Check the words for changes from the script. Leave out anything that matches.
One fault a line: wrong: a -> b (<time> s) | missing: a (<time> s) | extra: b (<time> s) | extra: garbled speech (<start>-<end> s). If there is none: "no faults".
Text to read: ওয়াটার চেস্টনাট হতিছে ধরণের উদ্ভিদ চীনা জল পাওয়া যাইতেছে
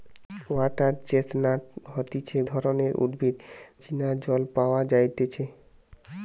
no faults